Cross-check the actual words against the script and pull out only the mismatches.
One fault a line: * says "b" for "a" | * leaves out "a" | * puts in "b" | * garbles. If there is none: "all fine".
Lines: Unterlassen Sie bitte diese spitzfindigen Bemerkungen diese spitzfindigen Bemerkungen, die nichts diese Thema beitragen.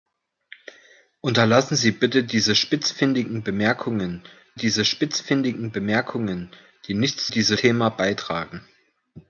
all fine